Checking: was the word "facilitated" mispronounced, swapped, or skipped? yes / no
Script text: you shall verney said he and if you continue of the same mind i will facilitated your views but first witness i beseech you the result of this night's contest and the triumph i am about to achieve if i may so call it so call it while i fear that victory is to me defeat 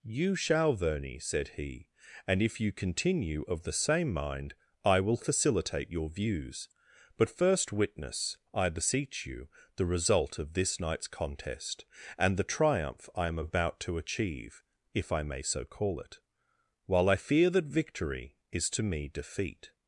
yes